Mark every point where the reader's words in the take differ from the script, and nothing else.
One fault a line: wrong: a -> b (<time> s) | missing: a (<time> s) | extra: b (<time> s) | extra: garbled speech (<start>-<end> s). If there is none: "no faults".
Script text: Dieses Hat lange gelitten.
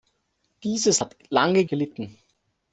no faults